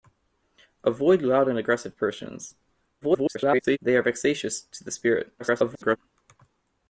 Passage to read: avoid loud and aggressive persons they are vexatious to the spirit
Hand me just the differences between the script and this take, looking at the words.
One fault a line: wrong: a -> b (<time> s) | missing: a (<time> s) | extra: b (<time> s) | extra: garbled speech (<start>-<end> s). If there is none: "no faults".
extra: garbled speech (3.0-3.8 s)
extra: garbled speech (5.4-6.0 s)